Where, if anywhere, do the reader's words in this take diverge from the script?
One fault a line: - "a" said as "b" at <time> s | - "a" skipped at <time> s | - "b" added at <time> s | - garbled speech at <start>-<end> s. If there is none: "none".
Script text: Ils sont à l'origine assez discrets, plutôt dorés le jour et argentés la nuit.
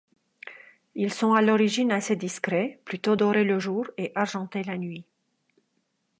none